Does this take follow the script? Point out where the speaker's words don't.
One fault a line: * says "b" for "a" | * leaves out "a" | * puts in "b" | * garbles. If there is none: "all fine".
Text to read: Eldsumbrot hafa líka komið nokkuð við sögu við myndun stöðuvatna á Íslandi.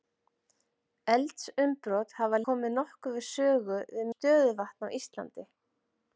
* leaves out "líka"
* leaves out "myndun"